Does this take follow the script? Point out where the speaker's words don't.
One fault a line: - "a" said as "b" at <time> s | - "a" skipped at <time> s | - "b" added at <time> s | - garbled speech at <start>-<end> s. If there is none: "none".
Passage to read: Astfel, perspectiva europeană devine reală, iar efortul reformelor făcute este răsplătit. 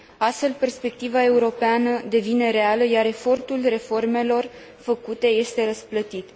none